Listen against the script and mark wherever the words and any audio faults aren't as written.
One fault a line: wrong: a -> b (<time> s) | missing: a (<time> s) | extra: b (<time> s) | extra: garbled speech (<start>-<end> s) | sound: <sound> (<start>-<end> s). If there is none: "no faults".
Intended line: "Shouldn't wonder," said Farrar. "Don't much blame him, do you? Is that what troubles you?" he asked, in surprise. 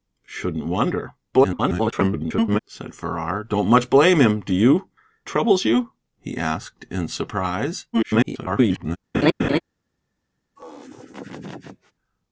extra: garbled speech (1.3-2.6 s)
missing: Is that what (4.9 s)
extra: garbled speech (7.9-9.0 s)
sound: laugh (9.1-9.6 s)
sound: laugh (10.6-11.9 s)